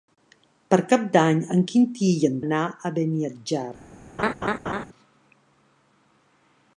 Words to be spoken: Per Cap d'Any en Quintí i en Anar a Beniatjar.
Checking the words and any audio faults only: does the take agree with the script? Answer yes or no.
no